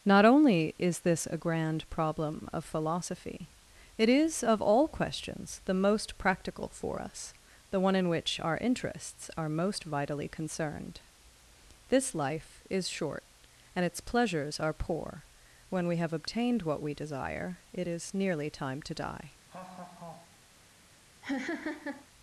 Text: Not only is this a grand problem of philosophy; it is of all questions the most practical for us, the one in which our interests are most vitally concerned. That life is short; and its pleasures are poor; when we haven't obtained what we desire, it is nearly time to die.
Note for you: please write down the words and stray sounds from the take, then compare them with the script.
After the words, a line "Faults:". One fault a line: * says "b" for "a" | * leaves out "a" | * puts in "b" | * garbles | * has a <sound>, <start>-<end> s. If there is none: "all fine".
Not only is this a grand problem of philosophy; it is of all questions the most practical for us, the one in which our interests are most vitally concerned. This life is short; and its pleasures are poor; when we have obtained what we desire, it is nearly time to die.
Faults:
* says "This" for "That"
* says "have" for "haven't"
* has a laugh, 19.5-20.4 s
* has a laugh, 21.2-22.1 s